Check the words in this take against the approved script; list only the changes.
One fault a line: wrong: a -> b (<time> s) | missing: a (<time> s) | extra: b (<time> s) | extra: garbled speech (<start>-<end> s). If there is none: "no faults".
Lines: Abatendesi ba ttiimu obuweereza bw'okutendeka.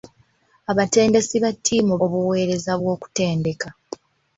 no faults